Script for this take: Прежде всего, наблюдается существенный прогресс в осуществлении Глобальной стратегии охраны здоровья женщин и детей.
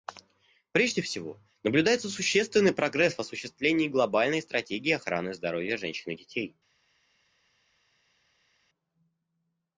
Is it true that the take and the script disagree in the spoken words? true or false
false